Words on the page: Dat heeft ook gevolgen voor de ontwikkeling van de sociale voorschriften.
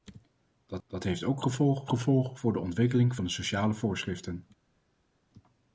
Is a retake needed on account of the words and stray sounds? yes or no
yes